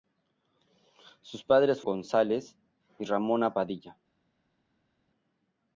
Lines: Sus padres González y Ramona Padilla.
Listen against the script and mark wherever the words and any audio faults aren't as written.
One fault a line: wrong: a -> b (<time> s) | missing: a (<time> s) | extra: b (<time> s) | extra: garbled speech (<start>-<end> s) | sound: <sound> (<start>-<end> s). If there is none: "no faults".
no faults